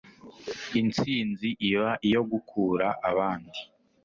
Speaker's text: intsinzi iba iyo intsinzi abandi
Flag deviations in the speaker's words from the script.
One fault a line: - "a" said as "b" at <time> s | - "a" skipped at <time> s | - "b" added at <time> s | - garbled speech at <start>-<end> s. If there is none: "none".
- "intsinzi" said as "gukura" at 2.3 s